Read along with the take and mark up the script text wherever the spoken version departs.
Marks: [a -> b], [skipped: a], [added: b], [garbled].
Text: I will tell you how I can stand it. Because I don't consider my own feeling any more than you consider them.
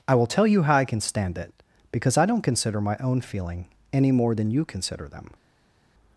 I will tell you how I can stand it. Because I don't consider my own feeling any more than you consider them.